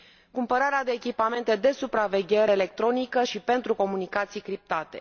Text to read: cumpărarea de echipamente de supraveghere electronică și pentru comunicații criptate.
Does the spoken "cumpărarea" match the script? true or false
true